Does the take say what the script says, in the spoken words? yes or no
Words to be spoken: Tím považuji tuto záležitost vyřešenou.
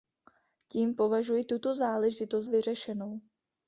yes